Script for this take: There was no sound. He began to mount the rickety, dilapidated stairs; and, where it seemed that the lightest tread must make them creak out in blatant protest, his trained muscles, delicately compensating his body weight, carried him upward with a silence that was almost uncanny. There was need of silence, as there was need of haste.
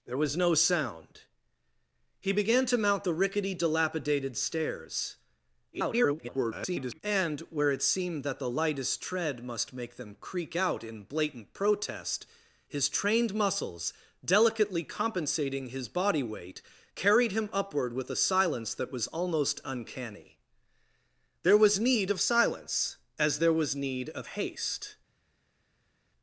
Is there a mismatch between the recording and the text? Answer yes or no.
yes